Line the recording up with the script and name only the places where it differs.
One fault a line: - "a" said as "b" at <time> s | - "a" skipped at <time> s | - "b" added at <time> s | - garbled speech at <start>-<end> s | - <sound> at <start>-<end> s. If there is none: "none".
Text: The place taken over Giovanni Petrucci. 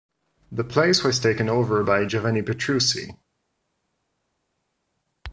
- "was" added at 1.0 s
- "by" added at 1.8 s